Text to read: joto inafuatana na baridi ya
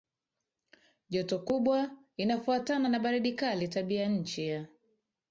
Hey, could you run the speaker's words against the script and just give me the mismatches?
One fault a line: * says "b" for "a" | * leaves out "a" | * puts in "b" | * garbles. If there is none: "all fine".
* puts in "kubwa"
* puts in "kali Tabianchi"